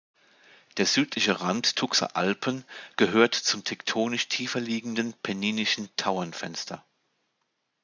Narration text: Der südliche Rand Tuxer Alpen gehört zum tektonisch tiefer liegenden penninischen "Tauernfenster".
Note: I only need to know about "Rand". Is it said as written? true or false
true